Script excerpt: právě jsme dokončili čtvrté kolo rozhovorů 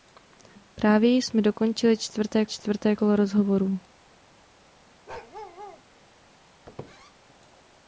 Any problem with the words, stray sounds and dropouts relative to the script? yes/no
yes